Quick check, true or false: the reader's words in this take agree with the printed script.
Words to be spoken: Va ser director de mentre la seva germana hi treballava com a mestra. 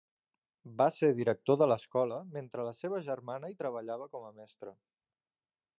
false